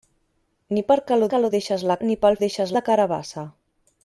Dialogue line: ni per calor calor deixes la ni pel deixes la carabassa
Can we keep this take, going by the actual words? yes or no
yes